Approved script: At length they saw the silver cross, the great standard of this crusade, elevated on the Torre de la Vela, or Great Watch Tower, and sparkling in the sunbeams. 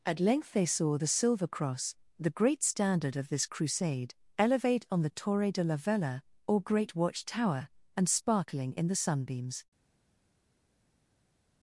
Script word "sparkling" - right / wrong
right